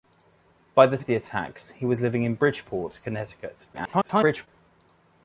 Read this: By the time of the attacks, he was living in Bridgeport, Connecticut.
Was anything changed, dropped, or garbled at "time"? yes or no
yes